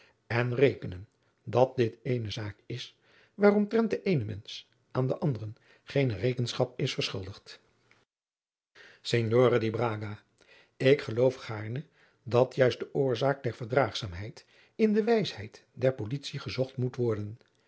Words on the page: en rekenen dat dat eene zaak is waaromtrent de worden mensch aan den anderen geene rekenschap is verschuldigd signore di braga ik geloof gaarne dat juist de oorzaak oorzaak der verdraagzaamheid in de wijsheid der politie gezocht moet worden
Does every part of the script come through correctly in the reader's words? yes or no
no